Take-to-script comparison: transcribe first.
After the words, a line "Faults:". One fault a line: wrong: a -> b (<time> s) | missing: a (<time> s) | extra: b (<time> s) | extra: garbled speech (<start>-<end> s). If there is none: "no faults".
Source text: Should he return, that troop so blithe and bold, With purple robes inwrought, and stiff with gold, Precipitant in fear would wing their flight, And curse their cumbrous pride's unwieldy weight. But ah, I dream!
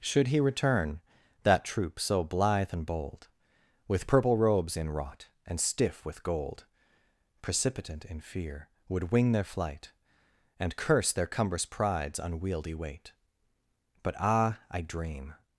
Should he return, that troop so blithe and bold, With purple robes inwrought, and stiff with gold, Precipitant in fear would wing their flight, And curse their cumbrous pride's unwieldy weight. But ah, I dream!
Faults:
no faults